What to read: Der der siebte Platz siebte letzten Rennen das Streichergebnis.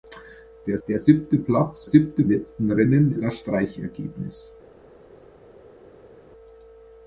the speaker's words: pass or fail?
pass